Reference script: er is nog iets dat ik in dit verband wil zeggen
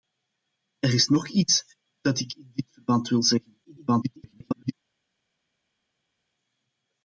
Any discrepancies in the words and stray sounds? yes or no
yes